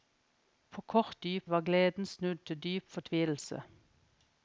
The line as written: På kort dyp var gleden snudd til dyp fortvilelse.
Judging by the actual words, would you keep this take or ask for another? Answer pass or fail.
pass